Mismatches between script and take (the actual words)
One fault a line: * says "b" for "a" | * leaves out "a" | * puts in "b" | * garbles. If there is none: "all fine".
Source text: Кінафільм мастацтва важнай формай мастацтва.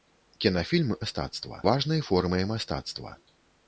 all fine